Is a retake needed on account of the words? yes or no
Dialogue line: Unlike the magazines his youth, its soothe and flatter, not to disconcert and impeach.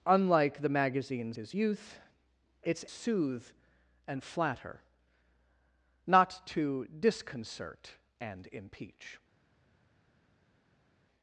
no